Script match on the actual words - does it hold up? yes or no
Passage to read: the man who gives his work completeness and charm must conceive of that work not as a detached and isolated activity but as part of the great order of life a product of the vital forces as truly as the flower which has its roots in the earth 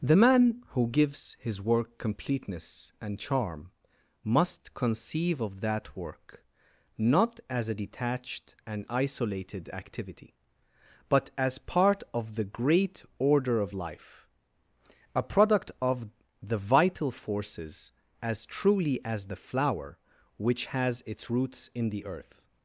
yes